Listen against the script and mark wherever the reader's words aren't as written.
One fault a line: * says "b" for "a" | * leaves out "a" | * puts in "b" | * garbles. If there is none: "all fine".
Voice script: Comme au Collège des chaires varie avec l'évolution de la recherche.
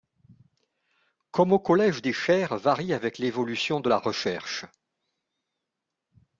all fine